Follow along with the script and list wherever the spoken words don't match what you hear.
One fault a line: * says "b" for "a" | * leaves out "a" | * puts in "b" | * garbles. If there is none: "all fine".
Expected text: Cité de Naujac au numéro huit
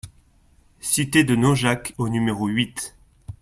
all fine